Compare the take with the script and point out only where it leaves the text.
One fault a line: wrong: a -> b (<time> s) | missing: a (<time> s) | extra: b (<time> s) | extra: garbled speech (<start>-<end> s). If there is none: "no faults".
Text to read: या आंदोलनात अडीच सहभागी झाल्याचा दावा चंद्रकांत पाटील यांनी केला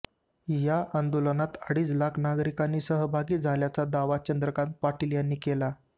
extra: लाख नागरिक (1.9 s)